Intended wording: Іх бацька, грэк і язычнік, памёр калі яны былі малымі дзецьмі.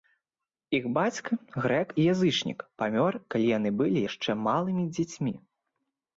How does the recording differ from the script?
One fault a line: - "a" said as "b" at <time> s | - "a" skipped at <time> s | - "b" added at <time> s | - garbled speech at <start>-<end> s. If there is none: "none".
- "яшчэ" added at 4.1 s